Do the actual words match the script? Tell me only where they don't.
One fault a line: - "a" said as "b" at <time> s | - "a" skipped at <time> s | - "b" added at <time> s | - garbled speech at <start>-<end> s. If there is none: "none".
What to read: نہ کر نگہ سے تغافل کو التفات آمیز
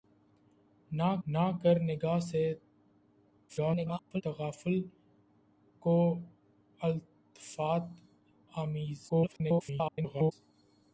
- "نہ" added at 1.3 s
- garbled speech at 3.5-4.2 s
- garbled speech at 9.1-10.3 s